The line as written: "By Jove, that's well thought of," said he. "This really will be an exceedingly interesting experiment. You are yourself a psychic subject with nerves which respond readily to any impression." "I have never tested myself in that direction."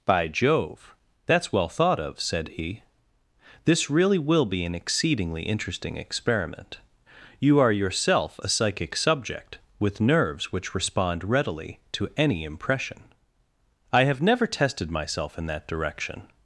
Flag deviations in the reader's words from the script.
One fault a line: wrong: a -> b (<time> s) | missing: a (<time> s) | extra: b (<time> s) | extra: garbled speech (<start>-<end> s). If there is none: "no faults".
no faults